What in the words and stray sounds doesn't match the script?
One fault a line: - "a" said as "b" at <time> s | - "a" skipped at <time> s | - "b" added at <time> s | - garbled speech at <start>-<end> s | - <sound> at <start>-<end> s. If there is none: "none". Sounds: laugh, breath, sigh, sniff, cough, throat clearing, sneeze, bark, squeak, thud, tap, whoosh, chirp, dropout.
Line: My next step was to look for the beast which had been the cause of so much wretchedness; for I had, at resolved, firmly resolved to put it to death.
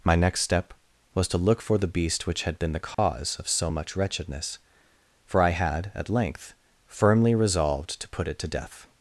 - dropout at 2.9-3.0 s
- "resolved" said as "length" at 6.1 s